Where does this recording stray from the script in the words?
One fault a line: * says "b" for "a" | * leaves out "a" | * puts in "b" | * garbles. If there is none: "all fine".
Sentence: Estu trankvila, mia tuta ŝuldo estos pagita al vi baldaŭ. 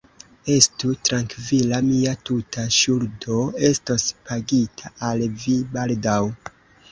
all fine